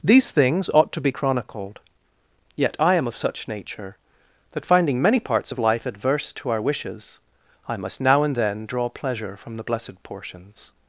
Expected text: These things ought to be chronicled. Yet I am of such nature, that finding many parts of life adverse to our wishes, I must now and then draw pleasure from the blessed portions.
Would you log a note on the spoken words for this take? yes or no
no